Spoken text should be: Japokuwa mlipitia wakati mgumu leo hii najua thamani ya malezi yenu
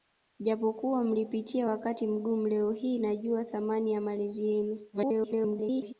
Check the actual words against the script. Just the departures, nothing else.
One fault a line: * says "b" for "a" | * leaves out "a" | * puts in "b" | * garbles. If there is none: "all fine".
* garbles